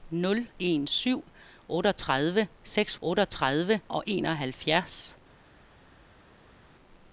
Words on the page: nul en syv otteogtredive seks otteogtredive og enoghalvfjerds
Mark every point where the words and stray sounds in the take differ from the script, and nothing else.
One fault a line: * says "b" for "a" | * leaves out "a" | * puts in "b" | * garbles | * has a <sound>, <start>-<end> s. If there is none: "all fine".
all fine